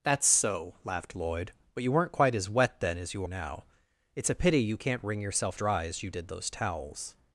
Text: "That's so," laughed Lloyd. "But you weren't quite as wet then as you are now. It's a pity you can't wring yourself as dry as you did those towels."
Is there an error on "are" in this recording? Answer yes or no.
yes